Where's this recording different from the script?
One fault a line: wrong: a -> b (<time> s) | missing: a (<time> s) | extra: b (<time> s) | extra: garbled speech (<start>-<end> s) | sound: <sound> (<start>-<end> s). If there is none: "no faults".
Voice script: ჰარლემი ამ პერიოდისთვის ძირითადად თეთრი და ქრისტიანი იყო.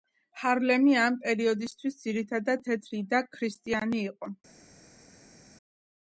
no faults